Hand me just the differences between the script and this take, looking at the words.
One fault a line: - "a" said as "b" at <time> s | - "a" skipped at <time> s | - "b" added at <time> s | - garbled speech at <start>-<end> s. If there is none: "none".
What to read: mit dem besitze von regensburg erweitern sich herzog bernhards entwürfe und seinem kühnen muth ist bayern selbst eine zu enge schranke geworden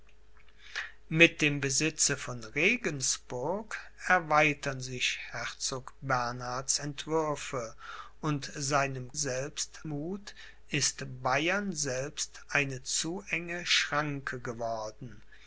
- "kühnen" said as "selbst" at 9.1 s